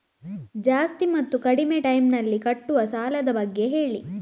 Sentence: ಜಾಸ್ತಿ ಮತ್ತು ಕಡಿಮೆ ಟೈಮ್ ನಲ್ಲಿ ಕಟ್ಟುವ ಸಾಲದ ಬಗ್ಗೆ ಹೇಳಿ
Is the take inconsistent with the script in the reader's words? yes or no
no